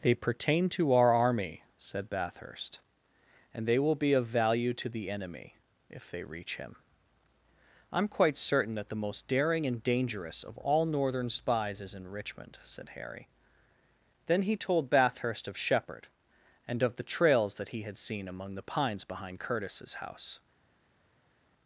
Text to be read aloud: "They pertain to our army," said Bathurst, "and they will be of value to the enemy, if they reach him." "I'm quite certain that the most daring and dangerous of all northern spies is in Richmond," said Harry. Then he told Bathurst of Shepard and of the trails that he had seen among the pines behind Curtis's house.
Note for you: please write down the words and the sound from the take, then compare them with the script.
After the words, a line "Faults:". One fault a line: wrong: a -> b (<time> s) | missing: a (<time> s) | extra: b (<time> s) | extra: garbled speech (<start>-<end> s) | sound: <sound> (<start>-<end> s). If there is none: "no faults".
"They pertain to our army," said Bathurst, "and they will be of value to the enemy, if they reach him." "I'm quite certain that the most daring and dangerous of all northern spies is in Richmond," said Harry. Then he told Bathurst of Shepard and of the trails that he had seen among the pines behind Curtis's house.
Faults:
no faults